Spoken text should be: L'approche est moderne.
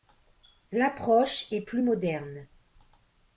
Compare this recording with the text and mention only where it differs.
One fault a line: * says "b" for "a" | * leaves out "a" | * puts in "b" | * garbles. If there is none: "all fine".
* puts in "plus"